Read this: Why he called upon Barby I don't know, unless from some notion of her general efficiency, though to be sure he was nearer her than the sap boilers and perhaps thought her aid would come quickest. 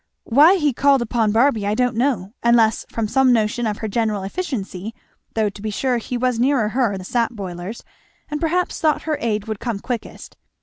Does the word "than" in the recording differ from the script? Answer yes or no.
yes